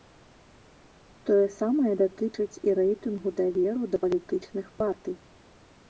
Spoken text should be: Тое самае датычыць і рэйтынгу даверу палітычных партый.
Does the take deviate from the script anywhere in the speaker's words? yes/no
yes